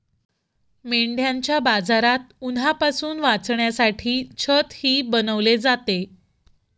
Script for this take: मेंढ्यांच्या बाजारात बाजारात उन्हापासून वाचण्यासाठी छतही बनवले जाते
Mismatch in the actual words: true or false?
true